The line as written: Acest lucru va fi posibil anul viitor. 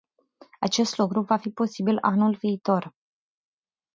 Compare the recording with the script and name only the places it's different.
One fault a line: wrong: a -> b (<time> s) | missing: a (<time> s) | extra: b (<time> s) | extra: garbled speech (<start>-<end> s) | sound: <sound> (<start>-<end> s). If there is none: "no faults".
no faults